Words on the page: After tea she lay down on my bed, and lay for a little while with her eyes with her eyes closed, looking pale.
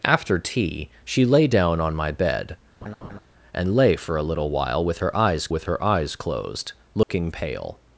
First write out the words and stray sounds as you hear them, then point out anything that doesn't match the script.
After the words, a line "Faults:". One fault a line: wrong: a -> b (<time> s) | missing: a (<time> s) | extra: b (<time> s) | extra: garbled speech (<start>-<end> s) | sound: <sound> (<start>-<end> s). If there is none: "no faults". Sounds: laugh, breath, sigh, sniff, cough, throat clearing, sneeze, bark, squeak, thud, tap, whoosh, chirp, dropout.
After tea she lay down on my bed, and lay for a little while with her eyes with her eyes closed, looking pale.
Faults:
sound: laugh (2.8-3.2 s)
sound: dropout (7.0-7.1 s)